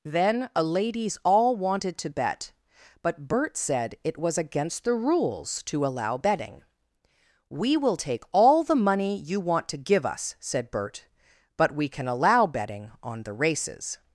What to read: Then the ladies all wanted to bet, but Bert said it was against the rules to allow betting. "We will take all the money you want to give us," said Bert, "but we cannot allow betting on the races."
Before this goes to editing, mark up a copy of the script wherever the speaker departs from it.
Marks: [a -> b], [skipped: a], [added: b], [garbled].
Then [the -> a] ladies all wanted to bet, but Bert said it was against the rules to allow betting. "We will take all the money you want to give us," said Bert, "but we [cannot -> can] allow betting on the races."